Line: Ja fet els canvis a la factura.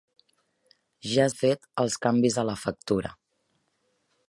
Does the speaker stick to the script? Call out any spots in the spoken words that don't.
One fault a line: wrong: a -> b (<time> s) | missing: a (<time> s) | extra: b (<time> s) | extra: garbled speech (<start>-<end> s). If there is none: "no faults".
no faults